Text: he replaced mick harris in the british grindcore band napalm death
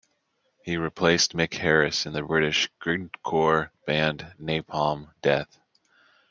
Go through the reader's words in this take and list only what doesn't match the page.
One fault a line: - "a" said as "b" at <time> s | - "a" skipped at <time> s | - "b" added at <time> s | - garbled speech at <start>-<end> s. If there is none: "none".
none